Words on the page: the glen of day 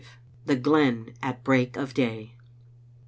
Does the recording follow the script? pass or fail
fail